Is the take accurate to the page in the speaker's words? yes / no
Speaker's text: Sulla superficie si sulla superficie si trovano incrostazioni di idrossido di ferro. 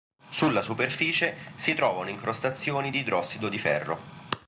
no